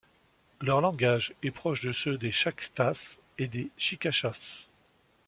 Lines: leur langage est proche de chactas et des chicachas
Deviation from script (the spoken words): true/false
true